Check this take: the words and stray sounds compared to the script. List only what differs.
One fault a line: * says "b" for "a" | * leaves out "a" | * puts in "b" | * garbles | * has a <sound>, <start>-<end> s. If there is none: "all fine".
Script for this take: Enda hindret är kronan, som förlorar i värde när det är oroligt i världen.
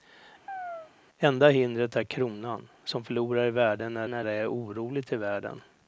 * has a chirp, 0.5-0.9 s
* puts in "när"